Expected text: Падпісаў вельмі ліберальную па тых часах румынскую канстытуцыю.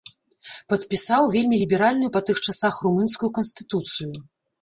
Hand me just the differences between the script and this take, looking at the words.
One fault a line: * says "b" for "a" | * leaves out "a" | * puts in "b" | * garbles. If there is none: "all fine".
all fine